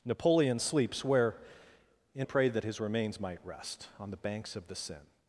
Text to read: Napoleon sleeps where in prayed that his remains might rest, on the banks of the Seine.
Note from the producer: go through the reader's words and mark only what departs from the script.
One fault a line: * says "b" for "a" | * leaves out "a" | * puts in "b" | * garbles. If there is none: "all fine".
all fine